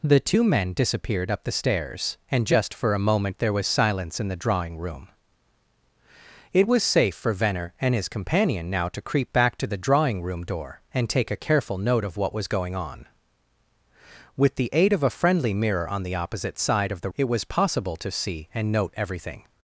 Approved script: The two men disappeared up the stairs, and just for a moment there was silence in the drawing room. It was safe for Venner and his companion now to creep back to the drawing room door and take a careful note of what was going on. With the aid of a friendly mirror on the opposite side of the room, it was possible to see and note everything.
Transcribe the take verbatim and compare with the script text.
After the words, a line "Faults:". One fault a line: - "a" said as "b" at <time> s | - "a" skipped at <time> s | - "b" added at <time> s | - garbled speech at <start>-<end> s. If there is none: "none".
The two men disappeared up the stairs, and just for a moment there was silence in the drawing room. It was safe for Venner and his companion now to creep back to the drawing room door and take a careful note of what was going on. With the aid of a friendly mirror on the opposite side of the it was possible to see and note everything.
Faults:
- "room" skipped at 17.1 s